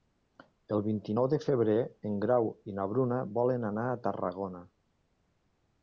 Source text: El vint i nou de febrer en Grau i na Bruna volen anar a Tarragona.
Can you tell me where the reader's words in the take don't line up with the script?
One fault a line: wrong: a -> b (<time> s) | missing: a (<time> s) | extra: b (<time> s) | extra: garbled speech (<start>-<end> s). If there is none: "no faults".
no faults